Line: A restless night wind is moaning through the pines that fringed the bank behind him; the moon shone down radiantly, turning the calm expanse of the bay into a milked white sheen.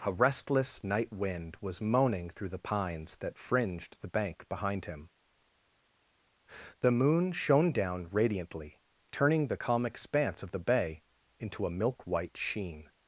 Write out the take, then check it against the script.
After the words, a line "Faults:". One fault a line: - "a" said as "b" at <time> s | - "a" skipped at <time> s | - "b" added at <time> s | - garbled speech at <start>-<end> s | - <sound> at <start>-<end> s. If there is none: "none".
A restless night wind was moaning through the pines that fringed the bank behind him; the moon shone down radiantly, turning the calm expanse of the bay into a milk white sheen.
Faults:
- "is" said as "was" at 1.6 s
- "milked" said as "milk" at 11.8 s